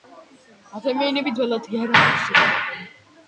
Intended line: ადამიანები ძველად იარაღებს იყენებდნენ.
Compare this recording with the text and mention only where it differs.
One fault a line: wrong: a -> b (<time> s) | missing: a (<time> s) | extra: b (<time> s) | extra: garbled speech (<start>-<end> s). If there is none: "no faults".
no faults